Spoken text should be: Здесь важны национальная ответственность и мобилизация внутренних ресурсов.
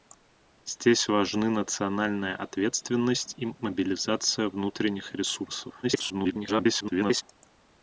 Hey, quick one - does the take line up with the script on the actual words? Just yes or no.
no